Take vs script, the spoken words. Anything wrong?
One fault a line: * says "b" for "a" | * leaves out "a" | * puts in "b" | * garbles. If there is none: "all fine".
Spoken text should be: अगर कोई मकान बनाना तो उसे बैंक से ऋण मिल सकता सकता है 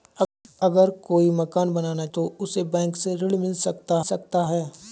all fine